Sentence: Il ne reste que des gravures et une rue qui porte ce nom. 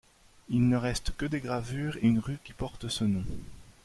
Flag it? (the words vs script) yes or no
no